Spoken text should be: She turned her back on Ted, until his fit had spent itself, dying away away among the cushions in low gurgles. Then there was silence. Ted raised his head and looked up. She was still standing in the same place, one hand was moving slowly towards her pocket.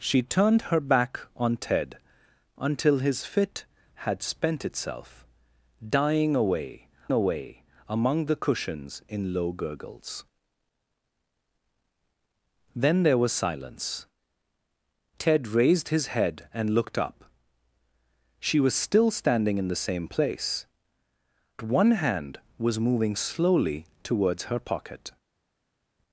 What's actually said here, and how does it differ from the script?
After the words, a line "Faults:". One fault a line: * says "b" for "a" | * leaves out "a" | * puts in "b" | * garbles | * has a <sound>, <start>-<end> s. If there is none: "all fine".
She turned her back on Ted, until his fit had spent itself, dying away away among the cushions in low gurgles. Then there was silence. Ted raised his head and looked up. She was still standing in the same place, one hand was moving slowly towards her pocket.
Faults:
all fine